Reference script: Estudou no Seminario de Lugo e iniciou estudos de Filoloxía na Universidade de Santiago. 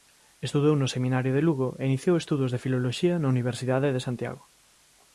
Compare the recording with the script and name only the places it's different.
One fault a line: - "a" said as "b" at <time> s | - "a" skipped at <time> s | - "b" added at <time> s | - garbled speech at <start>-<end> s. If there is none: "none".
none